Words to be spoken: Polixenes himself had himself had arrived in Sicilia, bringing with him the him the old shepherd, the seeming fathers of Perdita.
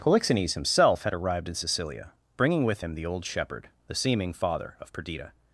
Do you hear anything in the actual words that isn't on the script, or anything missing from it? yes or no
yes